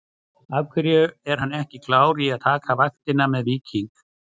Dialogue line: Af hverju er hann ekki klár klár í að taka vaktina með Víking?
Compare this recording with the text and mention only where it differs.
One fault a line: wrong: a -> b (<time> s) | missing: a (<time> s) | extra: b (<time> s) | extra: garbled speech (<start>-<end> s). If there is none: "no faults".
missing: klár (2.2 s)